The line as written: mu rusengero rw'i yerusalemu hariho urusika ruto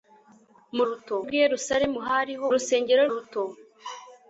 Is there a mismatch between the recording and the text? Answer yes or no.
yes